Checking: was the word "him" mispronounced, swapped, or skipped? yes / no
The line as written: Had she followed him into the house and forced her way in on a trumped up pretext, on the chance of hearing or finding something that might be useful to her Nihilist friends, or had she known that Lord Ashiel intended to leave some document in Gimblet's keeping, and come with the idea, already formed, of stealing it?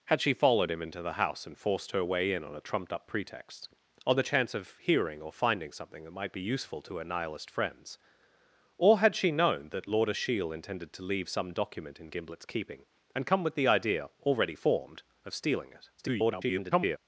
no